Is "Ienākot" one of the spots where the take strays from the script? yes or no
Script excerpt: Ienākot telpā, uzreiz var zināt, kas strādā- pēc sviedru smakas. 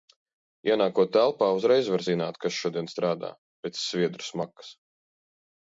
no